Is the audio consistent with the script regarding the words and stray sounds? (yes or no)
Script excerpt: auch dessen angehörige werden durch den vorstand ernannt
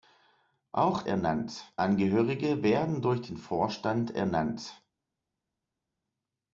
no